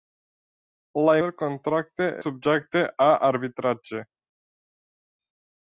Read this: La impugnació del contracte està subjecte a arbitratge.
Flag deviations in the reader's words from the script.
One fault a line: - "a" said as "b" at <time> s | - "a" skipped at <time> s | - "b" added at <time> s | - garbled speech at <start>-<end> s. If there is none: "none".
- "impugnació" skipped at 1.1 s
- "està" skipped at 2.1 s